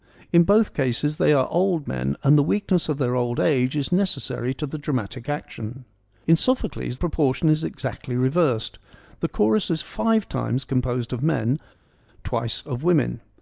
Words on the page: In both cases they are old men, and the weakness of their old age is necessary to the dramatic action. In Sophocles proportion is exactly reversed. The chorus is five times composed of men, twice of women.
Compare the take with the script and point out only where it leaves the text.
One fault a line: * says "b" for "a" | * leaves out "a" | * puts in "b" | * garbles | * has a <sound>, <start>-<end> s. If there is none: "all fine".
all fine